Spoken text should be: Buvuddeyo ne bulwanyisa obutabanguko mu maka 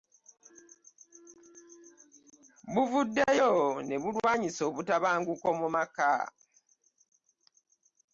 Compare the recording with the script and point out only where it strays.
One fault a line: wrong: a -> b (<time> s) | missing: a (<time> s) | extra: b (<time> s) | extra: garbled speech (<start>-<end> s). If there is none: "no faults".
no faults